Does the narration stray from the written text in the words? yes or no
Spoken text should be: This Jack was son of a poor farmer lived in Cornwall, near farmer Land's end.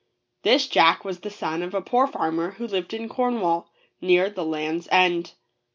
yes